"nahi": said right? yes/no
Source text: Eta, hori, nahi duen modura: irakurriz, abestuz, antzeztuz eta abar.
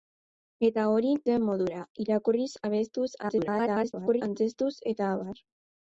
no